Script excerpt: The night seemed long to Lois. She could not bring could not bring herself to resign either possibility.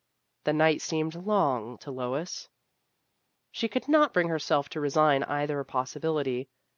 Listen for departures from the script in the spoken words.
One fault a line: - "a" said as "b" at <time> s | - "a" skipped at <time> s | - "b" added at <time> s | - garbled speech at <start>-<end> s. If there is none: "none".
- "could not bring" skipped at 4.3 s